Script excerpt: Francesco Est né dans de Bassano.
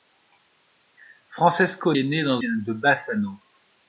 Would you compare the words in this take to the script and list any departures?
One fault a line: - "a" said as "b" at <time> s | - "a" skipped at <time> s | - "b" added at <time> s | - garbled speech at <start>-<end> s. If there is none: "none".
none